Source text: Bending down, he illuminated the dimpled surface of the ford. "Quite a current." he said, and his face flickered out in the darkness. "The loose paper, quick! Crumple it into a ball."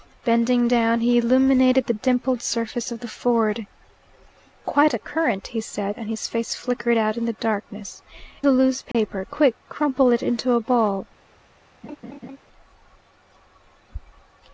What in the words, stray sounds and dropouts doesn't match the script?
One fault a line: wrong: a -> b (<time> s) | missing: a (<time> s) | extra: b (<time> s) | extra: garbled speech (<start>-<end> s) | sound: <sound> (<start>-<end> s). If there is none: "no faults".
sound: dropout (8.9-8.9 s)
sound: laugh (11.8-12.4 s)